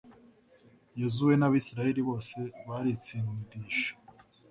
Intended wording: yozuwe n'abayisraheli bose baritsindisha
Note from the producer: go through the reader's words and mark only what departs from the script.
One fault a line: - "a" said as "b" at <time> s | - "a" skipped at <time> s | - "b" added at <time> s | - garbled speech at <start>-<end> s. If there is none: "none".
none